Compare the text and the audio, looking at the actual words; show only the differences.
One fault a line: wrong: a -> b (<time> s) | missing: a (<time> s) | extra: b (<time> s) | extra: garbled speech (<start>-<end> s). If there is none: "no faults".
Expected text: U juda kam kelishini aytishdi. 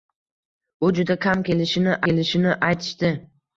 extra: kelishini (2.1 s)